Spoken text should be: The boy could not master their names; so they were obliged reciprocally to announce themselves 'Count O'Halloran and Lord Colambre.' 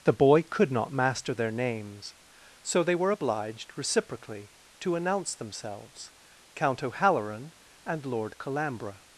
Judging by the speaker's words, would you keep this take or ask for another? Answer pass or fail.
pass